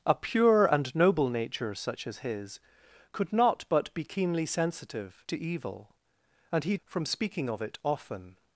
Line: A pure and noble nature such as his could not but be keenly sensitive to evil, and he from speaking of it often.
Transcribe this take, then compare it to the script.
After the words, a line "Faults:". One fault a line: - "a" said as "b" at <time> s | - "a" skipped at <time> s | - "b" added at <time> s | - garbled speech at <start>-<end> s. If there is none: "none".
A pure and noble nature such as his could not but be keenly sensitive to evil, and he from speaking of it often.
Faults:
none